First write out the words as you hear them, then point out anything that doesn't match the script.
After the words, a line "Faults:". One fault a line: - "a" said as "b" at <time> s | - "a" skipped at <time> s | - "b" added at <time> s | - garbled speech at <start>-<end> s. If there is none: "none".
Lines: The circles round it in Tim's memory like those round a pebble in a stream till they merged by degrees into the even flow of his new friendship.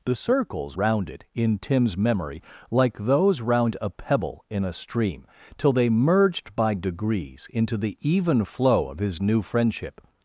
The circles round it in Tim's memory like those round a pebble in a stream till they merged by degrees into the even flow of his new friendship.
Faults:
none